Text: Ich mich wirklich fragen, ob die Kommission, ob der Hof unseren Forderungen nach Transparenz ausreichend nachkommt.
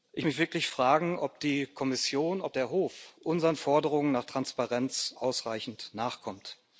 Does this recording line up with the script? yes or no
yes